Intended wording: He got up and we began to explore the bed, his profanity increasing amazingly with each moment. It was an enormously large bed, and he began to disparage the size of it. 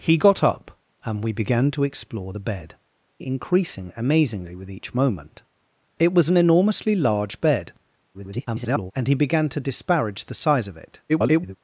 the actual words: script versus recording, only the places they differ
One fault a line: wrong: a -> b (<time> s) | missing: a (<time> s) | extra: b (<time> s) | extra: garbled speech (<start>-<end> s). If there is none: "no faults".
missing: his profanity (2.8 s)
extra: garbled speech (8.1-8.9 s)
extra: garbled speech (11.1-11.6 s)